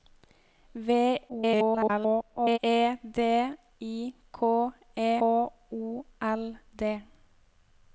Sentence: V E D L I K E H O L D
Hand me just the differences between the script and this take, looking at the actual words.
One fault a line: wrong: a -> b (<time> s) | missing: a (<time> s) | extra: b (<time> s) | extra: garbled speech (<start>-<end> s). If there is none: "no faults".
extra: garbled speech (1.3-2.6 s)
missing: L (3.2 s)
missing: H (5.1 s)